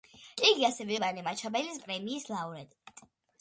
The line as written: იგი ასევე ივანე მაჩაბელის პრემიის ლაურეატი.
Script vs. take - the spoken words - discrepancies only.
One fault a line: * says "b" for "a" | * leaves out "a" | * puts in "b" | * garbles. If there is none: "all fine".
all fine